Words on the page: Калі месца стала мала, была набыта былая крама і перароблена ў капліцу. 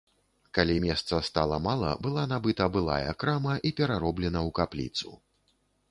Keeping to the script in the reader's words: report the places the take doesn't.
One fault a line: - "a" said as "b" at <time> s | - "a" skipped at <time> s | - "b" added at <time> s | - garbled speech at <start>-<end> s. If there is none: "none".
none